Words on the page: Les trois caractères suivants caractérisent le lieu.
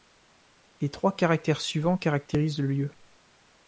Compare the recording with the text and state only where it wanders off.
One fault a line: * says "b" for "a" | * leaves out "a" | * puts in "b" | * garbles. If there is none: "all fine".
all fine